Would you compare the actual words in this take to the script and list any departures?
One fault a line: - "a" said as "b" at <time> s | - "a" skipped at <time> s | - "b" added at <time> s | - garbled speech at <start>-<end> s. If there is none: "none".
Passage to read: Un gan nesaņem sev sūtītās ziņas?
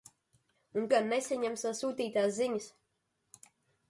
none